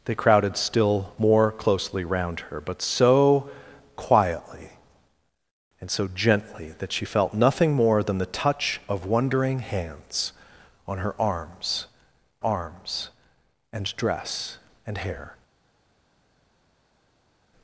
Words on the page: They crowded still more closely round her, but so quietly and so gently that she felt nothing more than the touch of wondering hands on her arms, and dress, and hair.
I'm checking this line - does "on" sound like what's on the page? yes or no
yes